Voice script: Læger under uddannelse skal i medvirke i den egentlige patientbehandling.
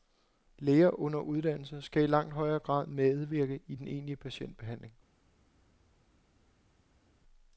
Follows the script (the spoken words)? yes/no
no